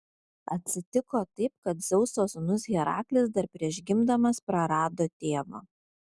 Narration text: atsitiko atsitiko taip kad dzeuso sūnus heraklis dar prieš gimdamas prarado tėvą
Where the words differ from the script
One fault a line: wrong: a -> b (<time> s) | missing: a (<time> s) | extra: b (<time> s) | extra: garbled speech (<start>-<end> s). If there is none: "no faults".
missing: atsitiko (1.2 s)